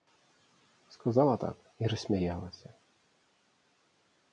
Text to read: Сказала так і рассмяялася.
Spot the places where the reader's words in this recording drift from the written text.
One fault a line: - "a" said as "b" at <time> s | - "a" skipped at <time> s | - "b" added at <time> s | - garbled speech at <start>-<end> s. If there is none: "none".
none